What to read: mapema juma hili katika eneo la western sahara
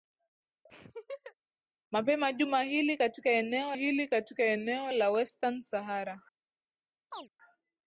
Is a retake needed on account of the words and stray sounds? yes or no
yes